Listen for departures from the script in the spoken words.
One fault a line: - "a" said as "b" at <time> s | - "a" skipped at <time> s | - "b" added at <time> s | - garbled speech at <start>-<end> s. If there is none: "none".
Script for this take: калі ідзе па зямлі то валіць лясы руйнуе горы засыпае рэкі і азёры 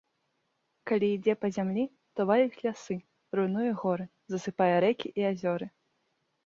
none